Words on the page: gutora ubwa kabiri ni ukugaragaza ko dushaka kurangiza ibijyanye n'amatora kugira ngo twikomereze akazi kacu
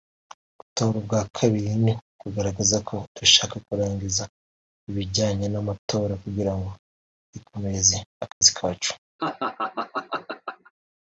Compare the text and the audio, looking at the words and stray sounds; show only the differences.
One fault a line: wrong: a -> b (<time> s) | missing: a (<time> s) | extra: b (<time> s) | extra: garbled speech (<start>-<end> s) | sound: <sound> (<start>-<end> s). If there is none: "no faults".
sound: dropout (8.3-8.4 s)
sound: laugh (9.2-10.7 s)